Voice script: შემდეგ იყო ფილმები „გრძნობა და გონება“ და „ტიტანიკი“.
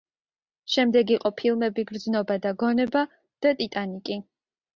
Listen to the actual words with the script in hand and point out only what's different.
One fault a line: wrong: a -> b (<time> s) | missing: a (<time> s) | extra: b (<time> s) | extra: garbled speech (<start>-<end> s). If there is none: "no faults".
no faults